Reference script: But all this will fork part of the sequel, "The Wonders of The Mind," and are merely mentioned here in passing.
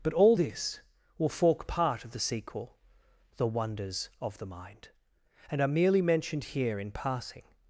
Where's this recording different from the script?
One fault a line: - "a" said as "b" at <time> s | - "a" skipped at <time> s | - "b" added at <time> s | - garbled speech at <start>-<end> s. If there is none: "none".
none